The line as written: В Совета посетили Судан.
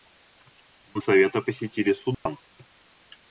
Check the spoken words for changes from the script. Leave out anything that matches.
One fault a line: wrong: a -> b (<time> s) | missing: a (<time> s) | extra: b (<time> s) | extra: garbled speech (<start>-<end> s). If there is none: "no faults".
no faults